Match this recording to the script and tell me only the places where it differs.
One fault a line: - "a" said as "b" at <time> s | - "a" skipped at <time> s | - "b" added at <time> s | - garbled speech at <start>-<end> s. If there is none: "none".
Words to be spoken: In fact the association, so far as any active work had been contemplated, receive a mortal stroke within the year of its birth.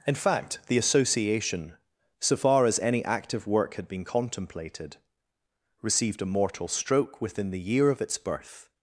- "receive" said as "received" at 5.8 s